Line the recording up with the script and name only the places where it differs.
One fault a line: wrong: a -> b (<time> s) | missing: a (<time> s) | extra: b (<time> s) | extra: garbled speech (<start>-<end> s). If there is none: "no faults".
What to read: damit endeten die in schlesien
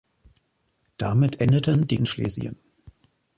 no faults